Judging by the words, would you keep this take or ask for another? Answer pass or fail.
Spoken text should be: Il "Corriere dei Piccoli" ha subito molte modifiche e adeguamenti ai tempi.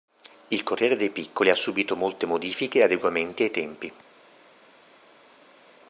pass